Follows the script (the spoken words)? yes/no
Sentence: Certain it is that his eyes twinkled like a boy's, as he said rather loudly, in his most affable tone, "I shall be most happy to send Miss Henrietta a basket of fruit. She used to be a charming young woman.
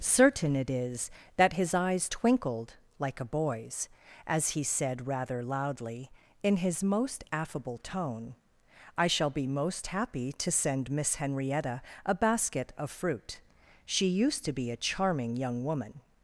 yes